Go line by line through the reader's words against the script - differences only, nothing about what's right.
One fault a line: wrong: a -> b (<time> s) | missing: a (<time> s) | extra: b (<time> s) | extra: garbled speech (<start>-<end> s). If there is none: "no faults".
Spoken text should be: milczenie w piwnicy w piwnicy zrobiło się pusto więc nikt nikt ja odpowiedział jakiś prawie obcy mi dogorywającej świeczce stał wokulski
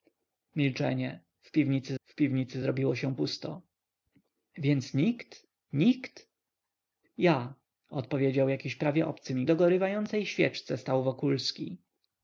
no faults